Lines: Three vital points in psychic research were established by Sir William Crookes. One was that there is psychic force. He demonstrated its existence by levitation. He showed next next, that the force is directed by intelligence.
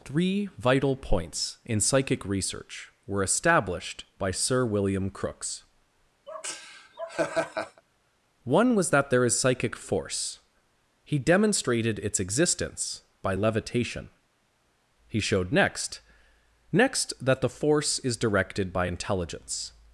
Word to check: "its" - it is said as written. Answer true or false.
true